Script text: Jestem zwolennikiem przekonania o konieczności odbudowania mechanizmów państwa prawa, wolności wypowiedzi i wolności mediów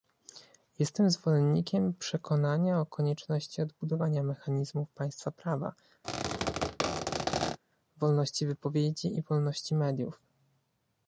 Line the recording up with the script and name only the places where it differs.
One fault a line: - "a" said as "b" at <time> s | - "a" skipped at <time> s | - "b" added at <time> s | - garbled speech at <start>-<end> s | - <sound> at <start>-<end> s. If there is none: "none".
- squeak at 6.0-7.6 s